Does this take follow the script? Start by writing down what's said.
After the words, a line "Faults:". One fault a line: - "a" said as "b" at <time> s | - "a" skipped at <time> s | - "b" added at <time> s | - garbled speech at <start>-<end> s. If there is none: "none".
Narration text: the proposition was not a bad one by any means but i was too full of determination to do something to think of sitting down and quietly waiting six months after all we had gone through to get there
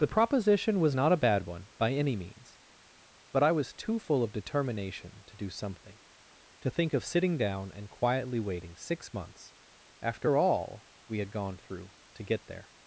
the proposition was not a bad one by any means but i was too full of determination to do something to think of sitting down and quietly waiting six months after all we had gone through to get there
Faults:
none